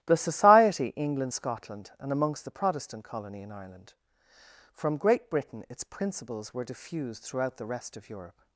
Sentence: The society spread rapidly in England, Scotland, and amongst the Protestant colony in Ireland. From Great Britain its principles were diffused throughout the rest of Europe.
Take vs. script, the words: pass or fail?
fail